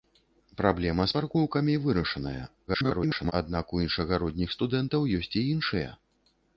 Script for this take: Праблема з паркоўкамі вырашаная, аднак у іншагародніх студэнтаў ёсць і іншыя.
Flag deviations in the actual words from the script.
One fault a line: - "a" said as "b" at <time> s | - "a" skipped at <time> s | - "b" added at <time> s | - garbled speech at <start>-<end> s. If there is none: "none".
- garbled speech at 2.7-3.3 s